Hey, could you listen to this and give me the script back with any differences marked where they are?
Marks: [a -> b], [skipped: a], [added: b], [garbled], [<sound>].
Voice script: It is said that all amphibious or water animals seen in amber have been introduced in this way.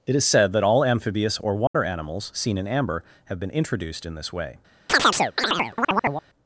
It is said that all amphibious or water [dropout] animals seen in amber have been introduced in this way. [chirp]